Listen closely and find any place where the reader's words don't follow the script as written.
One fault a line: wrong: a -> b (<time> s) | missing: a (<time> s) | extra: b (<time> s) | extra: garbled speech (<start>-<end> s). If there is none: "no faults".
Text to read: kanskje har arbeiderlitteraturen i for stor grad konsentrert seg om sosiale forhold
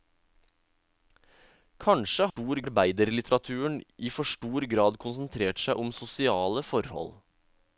wrong: har -> stor (2.3 s)